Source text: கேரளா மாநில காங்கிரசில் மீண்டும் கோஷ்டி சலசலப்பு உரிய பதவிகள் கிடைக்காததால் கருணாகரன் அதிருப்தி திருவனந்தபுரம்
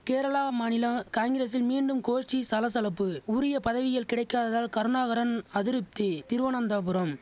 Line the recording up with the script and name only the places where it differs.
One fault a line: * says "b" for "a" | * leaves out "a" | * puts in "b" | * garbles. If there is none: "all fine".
all fine